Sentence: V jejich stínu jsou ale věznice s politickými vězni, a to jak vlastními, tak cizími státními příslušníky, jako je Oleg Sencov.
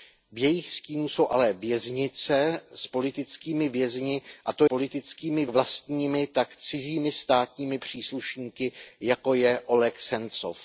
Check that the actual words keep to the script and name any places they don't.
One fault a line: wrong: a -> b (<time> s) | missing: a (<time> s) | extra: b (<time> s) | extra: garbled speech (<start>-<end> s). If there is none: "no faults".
wrong: jak -> politickými (4.6 s)